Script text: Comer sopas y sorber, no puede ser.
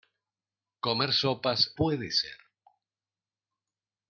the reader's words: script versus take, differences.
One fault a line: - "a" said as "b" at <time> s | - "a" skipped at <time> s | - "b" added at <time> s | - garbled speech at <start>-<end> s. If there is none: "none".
- "y sorber no" skipped at 1.7 s